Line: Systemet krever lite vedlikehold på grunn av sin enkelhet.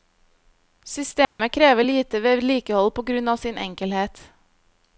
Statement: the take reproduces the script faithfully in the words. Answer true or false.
true